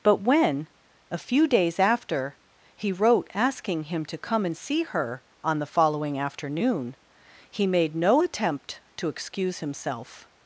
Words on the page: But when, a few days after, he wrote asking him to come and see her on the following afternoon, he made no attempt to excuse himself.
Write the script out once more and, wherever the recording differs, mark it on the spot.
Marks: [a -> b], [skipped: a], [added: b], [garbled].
But when, a few days after, he wrote asking him to come and see her on the following afternoon, he made no attempt to excuse himself.